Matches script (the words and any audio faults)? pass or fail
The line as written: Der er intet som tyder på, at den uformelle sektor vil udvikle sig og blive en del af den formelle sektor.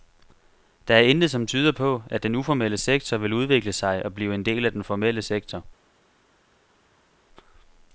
pass